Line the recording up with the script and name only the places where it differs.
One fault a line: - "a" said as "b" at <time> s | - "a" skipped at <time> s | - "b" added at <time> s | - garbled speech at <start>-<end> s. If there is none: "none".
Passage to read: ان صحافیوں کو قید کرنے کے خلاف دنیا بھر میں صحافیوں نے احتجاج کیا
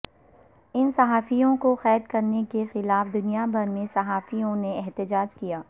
none